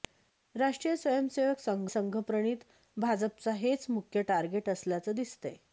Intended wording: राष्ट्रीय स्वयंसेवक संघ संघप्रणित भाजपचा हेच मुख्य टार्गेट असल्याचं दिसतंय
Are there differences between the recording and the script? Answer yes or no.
no